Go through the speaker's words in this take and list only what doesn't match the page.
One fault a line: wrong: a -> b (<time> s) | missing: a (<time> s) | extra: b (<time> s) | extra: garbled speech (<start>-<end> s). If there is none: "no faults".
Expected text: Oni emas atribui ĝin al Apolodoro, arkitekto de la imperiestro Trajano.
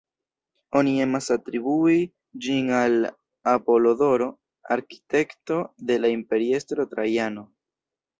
no faults